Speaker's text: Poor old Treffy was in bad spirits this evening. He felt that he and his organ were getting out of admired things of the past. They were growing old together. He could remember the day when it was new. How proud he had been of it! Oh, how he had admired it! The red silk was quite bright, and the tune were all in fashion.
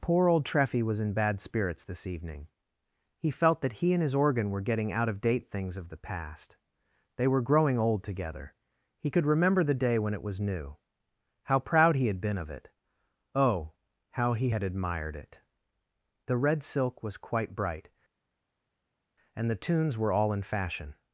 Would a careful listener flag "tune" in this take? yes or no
yes